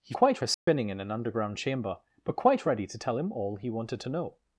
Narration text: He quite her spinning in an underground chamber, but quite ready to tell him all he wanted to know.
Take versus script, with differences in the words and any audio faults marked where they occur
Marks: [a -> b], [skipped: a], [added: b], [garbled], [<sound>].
He quite her spinning [dropout] in an underground chamber, but quite ready to tell him all he wanted to know.